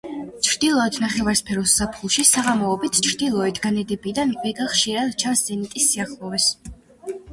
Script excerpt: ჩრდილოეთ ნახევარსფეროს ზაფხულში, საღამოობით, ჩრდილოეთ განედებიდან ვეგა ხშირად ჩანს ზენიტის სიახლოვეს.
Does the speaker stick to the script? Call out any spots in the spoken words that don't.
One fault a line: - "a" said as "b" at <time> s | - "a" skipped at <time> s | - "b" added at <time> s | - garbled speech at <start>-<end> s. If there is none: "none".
none